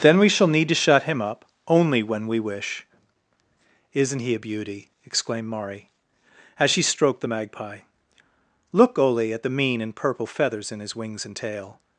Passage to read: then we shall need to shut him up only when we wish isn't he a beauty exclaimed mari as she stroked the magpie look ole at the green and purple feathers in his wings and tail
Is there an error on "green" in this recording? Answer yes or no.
yes